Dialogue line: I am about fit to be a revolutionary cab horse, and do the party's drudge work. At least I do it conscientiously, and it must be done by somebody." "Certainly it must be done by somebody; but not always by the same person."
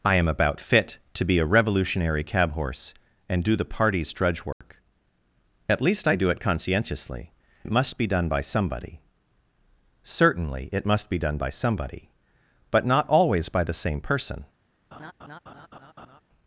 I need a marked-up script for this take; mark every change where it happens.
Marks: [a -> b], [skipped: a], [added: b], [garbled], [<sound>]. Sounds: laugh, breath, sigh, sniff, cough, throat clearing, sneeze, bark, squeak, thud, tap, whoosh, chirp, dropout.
I am about fit to be a revolutionary cab horse, and do the party's drudge work. [dropout] At least I do it conscientiously, [skipped: and] it must be done by somebody." "Certainly it must be done by somebody; but not always by the same person." [laugh]